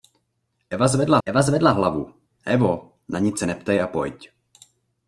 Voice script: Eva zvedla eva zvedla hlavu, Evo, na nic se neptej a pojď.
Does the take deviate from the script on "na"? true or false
false